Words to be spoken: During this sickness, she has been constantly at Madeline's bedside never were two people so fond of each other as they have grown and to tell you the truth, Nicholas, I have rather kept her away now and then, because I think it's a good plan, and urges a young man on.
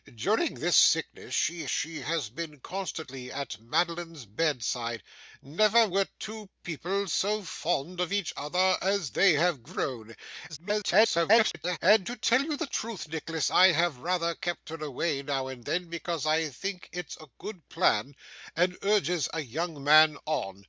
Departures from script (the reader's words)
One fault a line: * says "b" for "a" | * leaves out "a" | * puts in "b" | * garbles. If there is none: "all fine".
* puts in "she"
* garbles